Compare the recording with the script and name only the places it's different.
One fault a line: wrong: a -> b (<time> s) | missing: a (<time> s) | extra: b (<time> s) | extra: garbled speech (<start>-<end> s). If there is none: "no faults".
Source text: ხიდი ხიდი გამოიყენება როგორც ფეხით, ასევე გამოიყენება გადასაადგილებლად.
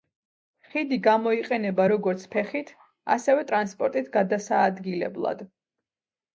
missing: ხიდი (1.0 s)
wrong: გამოიყენება -> ტრანსპორტით (3.5 s)